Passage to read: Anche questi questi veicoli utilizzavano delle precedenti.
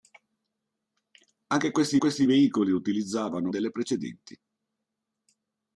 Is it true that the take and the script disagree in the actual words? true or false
false